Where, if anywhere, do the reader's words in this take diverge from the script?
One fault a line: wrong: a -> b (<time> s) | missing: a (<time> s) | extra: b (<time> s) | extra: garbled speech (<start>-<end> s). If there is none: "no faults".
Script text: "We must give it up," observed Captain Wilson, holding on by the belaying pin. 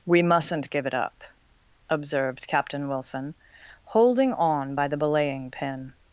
wrong: must -> mustn't (0.2 s)